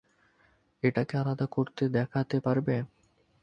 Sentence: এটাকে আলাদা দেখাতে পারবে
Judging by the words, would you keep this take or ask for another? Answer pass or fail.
fail